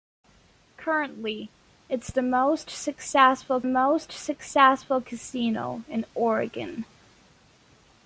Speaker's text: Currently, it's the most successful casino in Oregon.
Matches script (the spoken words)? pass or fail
fail